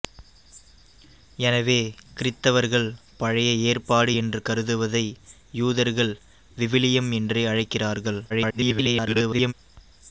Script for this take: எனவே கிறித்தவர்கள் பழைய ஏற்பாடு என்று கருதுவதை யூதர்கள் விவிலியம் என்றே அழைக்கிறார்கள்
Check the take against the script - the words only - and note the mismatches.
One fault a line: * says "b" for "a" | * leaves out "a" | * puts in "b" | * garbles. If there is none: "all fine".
* garbles